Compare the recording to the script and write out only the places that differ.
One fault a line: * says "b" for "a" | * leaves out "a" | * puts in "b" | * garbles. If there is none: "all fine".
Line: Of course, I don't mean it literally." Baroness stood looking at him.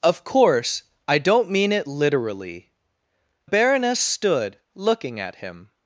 all fine